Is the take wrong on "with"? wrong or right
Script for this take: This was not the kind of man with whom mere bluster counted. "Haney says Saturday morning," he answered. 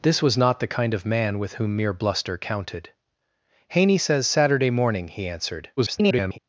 right